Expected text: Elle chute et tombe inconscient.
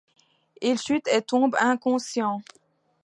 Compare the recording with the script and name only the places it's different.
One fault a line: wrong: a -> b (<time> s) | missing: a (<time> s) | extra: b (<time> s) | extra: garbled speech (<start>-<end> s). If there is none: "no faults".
wrong: Elle -> Il (0.6 s)